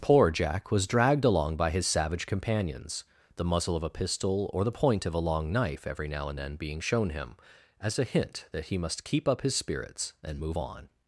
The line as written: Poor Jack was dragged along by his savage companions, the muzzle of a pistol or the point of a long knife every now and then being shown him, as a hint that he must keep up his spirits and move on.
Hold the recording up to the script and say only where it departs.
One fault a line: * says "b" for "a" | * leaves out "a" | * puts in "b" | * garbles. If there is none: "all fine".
all fine